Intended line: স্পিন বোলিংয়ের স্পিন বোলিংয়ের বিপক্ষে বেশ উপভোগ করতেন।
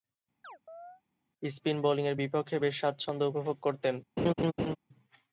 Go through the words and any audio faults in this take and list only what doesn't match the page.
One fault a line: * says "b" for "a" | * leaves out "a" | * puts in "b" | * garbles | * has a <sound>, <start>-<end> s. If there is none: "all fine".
* has a chirp, 0.4-1.0 s
* leaves out "স্পিন বোলিংয়ের"
* puts in "স্বাচ্ছন্দ্য"
* has a laugh, 4.2-4.8 s